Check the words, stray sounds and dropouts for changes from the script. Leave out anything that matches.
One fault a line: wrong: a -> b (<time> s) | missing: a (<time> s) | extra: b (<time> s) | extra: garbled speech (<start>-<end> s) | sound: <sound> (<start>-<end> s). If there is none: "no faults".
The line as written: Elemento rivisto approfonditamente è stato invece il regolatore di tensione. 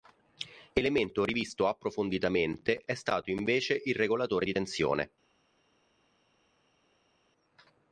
no faults